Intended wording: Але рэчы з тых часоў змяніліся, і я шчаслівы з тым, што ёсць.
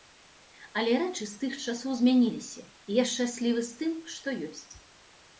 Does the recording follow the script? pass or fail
pass